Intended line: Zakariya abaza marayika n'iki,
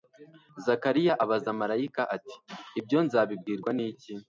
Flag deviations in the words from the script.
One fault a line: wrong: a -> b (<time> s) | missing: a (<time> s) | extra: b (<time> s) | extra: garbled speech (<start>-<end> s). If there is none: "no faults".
extra: ati Ibyo nzabibwirwa (2.1 s)